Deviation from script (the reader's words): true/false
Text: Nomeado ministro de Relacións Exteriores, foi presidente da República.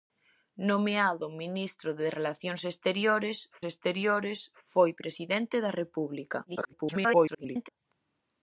true